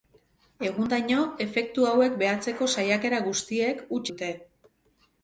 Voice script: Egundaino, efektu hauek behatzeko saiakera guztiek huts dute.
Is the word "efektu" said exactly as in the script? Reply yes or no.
yes